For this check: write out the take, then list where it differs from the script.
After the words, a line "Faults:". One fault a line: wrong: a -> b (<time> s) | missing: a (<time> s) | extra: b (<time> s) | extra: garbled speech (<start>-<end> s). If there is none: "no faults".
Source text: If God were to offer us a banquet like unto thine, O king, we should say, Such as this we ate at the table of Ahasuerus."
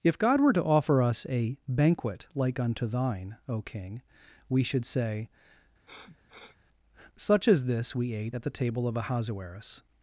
If God were to offer us a banquet like unto thine, O king, we should say, Such as this we ate at the table of Ahasuerus."
Faults:
no faults